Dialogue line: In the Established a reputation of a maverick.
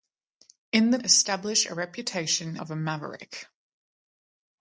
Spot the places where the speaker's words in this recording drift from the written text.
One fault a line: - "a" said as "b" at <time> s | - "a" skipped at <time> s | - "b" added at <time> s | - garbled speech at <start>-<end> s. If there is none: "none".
none